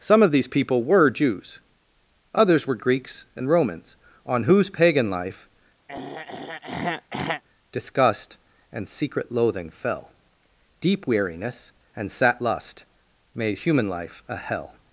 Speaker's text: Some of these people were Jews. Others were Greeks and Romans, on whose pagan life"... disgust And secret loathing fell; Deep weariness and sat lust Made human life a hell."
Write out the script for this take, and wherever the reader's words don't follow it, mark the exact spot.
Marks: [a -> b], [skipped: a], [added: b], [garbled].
Some of these people were Jews. Others were Greeks and Romans, on whose pagan life"... disgust And secret loathing fell; Deep weariness and sat lust Made human life a hell."